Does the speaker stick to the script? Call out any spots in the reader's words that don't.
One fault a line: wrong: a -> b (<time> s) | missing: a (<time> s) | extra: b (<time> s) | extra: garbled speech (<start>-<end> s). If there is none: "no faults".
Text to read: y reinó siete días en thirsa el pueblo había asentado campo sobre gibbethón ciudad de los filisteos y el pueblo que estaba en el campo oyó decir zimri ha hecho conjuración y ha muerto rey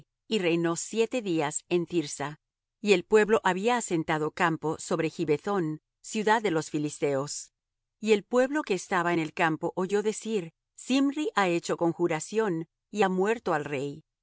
extra: y (2.8 s)
extra: al (13.5 s)